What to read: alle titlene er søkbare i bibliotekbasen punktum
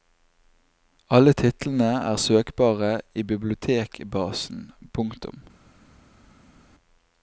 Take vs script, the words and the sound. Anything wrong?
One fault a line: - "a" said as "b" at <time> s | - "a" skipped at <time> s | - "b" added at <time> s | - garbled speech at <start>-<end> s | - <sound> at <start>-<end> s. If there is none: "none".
none